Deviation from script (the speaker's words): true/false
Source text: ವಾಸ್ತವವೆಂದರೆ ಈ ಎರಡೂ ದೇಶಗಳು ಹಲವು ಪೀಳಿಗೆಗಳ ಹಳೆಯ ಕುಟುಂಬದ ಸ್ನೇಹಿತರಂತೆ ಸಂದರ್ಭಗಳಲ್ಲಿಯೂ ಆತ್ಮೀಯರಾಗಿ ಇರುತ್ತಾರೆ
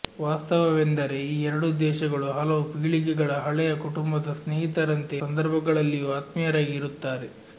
false